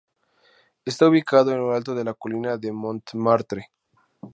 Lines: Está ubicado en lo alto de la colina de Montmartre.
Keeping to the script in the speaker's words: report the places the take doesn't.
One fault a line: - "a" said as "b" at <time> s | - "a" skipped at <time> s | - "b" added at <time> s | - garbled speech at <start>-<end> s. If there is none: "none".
none